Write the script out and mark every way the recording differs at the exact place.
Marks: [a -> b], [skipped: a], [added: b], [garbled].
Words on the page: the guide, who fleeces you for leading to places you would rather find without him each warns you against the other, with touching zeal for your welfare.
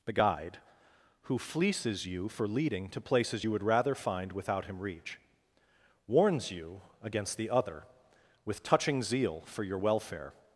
the guide, who fleeces you for leading to places you would rather find without him [each -> reach] warns you against the other, with touching zeal for your welfare.